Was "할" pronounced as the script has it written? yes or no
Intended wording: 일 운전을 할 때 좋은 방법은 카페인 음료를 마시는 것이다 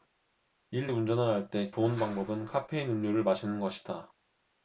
yes